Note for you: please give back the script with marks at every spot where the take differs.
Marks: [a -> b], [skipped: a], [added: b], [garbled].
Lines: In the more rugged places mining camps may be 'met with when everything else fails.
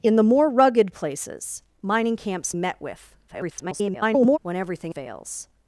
In the more rugged places mining camps [skipped: may be] 'met with [garbled] when everything [skipped: else] fails.